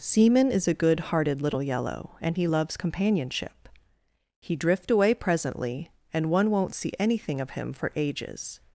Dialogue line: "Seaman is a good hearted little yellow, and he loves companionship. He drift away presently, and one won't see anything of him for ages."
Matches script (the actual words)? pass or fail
pass